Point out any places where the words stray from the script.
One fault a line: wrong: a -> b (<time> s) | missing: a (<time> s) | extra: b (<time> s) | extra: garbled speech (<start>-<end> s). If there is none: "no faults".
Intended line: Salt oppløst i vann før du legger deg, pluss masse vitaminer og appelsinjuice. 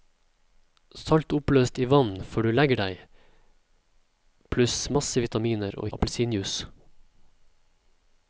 no faults